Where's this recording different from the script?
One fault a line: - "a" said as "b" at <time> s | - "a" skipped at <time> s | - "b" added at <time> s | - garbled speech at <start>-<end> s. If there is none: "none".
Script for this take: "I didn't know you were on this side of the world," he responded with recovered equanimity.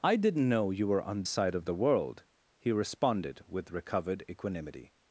- "this" skipped at 1.2 s